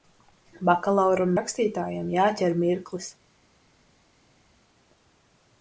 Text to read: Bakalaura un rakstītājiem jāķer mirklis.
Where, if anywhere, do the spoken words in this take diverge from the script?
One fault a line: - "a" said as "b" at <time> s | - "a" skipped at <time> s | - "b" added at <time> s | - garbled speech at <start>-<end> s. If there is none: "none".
none